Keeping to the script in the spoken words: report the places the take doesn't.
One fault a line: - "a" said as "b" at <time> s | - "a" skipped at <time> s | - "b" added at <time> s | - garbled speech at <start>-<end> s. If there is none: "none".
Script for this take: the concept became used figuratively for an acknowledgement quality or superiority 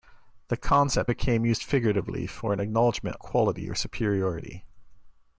none